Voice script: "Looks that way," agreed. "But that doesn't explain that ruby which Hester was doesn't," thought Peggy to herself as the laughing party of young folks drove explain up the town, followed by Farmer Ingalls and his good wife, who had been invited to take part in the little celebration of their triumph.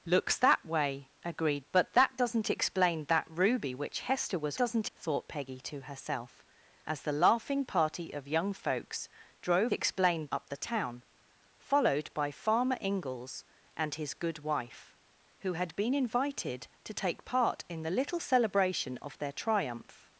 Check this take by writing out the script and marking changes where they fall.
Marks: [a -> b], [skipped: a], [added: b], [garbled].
"Looks that way," agreed. "But that doesn't explain that ruby which Hester was doesn't," thought Peggy to herself as the laughing party of young folks drove explain up the town, followed by Farmer Ingalls and his good wife, who had been invited to take part in the little celebration of their triumph.